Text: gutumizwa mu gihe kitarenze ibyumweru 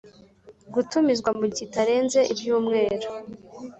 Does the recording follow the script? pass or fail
fail